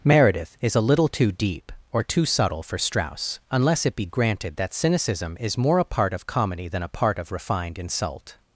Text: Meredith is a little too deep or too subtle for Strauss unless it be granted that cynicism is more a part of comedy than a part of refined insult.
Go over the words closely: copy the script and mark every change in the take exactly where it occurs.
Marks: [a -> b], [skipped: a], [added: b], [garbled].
Meredith is a little too deep or too subtle for Strauss unless it be granted that cynicism is more a part of comedy than a part of refined insult.